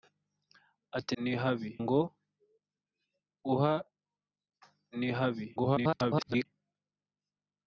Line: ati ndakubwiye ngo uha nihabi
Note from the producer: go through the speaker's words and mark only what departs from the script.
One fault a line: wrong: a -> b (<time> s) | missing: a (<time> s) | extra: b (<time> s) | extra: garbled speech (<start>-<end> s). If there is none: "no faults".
wrong: ndakubwiye -> nihabi (1.2 s)
extra: garbled speech (5.6-6.5 s)